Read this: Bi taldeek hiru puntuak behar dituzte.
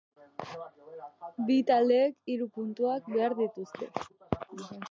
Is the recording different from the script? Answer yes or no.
no